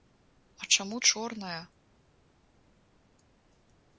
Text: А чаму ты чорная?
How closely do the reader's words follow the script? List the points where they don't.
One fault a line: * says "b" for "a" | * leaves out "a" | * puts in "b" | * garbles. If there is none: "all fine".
* leaves out "ты"